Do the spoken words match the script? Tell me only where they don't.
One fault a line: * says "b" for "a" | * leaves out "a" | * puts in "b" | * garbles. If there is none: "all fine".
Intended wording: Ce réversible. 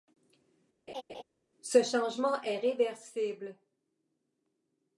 * puts in "changement est"